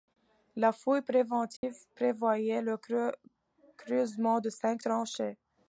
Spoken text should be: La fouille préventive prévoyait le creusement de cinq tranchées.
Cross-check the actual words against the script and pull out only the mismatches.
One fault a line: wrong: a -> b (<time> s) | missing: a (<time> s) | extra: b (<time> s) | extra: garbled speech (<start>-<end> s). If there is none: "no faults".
no faults